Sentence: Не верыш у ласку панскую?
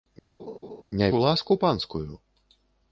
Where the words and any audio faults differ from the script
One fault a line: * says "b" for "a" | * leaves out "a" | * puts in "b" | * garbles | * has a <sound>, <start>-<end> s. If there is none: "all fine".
* has a laugh, 0.4-0.8 s
* leaves out "верыш"